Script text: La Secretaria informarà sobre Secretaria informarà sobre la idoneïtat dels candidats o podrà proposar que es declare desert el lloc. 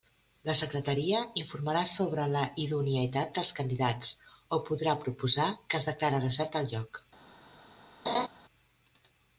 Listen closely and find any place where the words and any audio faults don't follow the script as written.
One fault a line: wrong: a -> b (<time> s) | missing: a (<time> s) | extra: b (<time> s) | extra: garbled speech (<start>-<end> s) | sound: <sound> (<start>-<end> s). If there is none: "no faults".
missing: Secretaria informarà sobre (2.2 s)
sound: laugh (8.1-8.3 s)